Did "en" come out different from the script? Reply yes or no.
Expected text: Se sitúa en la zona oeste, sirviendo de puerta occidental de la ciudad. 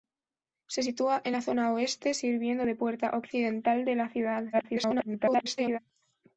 no